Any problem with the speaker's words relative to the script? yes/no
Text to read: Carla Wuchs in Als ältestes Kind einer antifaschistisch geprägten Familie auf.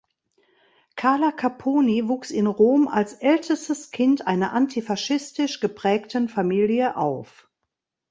yes